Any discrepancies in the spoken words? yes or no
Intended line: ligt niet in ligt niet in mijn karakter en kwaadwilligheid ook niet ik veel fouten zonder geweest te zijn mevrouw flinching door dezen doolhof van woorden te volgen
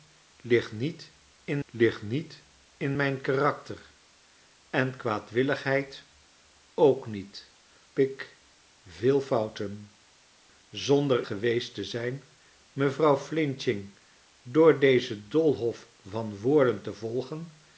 no